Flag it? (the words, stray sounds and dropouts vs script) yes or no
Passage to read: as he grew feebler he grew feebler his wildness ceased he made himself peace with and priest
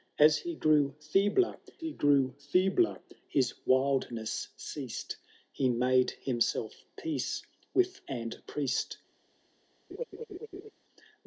yes